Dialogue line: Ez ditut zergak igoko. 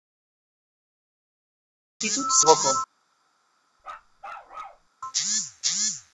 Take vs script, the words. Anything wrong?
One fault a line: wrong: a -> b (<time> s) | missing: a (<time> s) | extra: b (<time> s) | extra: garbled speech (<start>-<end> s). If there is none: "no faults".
missing: zergak (2.4 s)